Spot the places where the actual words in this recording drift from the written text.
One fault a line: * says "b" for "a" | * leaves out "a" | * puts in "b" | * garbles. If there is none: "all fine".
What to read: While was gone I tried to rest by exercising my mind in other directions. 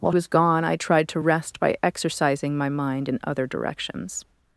all fine